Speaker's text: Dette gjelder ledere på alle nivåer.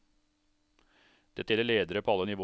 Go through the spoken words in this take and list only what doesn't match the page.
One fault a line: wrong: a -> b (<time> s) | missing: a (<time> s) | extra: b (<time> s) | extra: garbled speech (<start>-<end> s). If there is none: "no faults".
no faults